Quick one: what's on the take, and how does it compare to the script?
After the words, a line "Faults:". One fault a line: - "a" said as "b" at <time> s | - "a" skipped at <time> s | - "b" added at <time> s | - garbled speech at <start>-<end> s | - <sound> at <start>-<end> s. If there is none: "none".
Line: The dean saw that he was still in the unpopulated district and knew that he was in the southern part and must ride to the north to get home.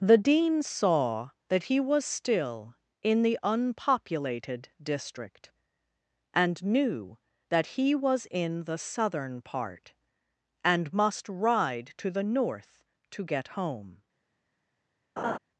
The dean saw that he was still in the unpopulated district and knew that he was in the southern part and must ride to the north to get home.
Faults:
- laugh at 15.2-15.4 s